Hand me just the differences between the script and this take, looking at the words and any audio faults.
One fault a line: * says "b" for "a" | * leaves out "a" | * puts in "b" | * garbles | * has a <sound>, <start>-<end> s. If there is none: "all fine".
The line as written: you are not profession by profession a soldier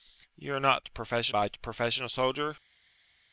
all fine